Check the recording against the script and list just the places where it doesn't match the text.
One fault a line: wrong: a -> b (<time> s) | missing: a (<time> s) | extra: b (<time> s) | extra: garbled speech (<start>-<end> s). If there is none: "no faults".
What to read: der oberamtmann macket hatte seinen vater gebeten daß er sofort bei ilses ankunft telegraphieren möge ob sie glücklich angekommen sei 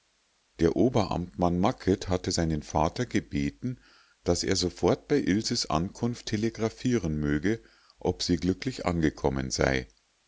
no faults